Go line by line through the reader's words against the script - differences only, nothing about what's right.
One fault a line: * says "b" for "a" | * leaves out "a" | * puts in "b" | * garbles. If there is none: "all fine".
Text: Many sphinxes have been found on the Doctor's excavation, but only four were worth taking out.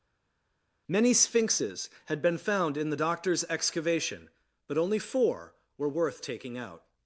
* says "had" for "have"
* says "in" for "on"